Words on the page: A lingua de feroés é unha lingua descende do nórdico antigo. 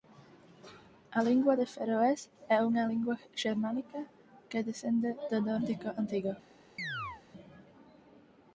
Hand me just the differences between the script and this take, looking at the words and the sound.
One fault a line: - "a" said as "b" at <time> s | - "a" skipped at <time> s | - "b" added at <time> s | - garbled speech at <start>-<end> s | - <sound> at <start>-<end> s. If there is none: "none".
- "xermánica que" added at 3.4 s
- chirp at 6.8-7.2 s